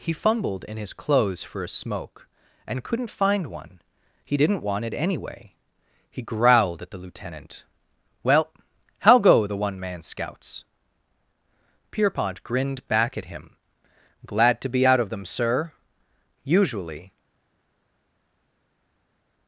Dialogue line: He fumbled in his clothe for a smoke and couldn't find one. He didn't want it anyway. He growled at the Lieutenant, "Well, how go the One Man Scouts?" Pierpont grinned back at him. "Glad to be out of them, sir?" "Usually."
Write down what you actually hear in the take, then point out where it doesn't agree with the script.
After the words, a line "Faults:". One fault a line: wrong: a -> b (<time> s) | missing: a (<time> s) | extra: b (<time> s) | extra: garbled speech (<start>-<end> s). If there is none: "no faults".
He fumbled in his clothes for a smoke and couldn't find one. He didn't want it anyway. He growled at the Lieutenant, "Well, how go the One Man Scouts?" Pierpont grinned back at him. "Glad to be out of them, sir?" "Usually."
Faults:
wrong: clothe -> clothes (0.9 s)